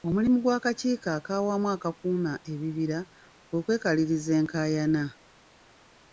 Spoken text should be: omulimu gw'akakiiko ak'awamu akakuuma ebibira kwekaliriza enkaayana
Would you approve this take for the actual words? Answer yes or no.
no